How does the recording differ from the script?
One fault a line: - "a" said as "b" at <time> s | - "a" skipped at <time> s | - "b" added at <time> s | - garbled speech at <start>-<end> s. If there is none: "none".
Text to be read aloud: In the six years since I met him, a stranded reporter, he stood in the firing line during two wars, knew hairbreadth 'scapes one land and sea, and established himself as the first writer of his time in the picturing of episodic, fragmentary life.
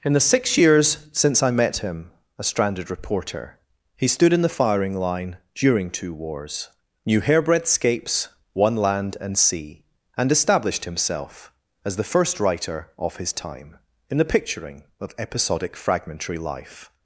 none